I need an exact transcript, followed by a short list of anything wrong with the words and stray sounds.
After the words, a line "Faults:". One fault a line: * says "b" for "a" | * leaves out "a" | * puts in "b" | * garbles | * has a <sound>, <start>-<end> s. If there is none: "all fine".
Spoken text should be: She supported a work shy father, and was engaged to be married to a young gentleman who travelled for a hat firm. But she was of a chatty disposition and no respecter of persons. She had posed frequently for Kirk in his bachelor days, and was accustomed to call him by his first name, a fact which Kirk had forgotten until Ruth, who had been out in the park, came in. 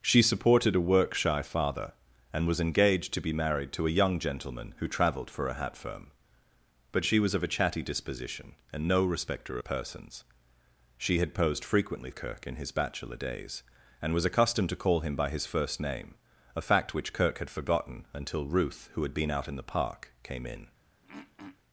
She supported a work shy father, and was engaged to be married to a young gentleman who travelled for a hat firm. But she was of a chatty disposition and no respecter persons. She had posed frequently Kirk in his bachelor days, and was accustomed to call him by his first name, a fact which Kirk had forgotten until Ruth, who had been out in the park, came in.
Faults:
* leaves out "of"
* leaves out "for"
* has a throat clearing, 21.0-21.6 s